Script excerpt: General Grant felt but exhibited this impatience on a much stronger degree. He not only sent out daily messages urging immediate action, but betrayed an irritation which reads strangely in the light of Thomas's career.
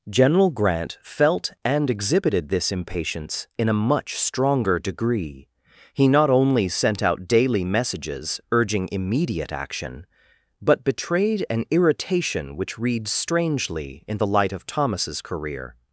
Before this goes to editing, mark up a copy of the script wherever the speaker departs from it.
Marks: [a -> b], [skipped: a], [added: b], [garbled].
General Grant felt [but -> and] exhibited this impatience [on -> in] a much stronger degree. He not only sent out daily messages urging immediate action, but betrayed an irritation which reads strangely in the light of Thomas's career.